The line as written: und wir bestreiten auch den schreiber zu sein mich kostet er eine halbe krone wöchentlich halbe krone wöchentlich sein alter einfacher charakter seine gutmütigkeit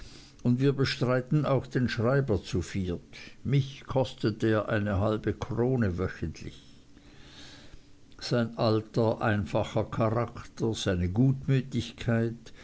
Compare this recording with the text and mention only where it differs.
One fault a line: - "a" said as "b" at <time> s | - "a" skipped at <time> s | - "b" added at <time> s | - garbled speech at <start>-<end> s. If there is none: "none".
- "sein" said as "viert" at 2.6 s
- "halbe krone wöchentlich" skipped at 6.6 s